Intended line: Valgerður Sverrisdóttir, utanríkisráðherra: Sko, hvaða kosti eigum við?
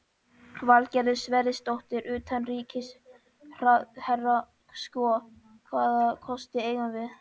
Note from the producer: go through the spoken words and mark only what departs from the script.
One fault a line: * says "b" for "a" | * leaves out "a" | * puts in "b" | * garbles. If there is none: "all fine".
all fine